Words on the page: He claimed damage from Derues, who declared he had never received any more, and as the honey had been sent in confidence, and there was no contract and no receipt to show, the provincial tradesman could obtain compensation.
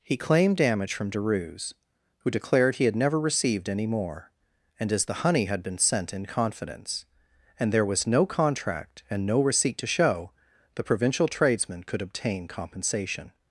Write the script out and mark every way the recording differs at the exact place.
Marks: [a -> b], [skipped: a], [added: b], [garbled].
He claimed damage from Derues, who declared he had never received any more, and as the honey had been sent in confidence, and there was no contract and no receipt to show, the provincial tradesman could obtain compensation.